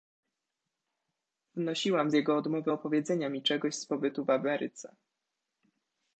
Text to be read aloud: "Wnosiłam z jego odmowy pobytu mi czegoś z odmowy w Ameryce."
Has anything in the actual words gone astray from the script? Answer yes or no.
yes